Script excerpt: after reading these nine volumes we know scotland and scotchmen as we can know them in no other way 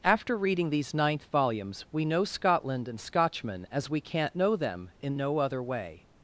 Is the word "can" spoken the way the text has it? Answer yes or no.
no